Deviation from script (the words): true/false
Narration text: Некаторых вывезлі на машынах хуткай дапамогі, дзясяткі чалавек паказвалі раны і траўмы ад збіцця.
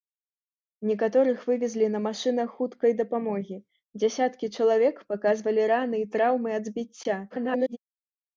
true